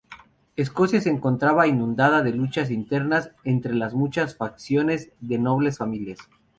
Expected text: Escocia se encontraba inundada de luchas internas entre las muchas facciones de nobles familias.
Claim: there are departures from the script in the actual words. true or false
false